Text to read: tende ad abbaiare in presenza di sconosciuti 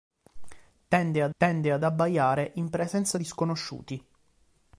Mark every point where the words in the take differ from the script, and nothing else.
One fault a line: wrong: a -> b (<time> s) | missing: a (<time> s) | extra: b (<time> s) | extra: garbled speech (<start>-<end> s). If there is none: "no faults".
extra: tende ad (1.4 s)